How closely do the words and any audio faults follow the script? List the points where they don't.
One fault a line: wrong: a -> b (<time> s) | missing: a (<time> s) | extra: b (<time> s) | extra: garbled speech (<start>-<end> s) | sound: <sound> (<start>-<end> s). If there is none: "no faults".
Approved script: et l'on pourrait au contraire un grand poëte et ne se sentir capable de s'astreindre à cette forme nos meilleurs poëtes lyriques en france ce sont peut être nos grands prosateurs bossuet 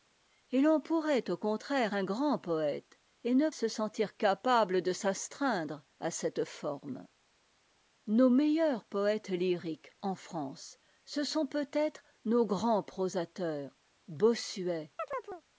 sound: chirp (15.0-15.4 s)